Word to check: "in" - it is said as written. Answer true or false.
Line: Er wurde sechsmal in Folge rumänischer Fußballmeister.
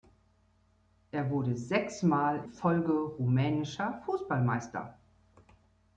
false